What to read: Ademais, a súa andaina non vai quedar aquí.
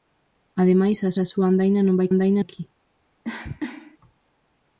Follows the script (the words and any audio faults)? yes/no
no